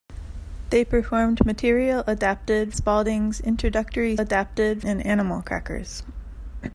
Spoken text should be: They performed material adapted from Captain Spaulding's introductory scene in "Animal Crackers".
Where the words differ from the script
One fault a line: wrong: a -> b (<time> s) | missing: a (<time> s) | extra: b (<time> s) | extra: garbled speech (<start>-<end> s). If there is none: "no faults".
missing: from Captain (2.7 s)
wrong: scene -> adapted (4.2 s)